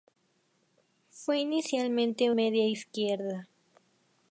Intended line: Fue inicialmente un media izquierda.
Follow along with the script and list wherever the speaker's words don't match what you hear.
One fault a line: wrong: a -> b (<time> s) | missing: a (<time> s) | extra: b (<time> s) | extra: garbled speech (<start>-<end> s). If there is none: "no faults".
missing: un (2.3 s)